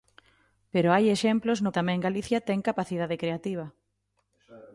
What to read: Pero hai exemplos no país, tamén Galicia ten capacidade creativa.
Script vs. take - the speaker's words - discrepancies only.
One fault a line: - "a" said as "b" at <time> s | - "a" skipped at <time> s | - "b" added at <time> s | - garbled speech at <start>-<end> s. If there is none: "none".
- "país" skipped at 1.7 s